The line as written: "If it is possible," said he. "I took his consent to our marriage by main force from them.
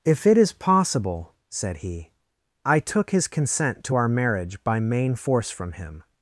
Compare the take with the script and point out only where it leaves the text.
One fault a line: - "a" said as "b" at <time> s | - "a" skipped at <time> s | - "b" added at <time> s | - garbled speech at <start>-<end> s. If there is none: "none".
- "them" said as "him" at 5.7 s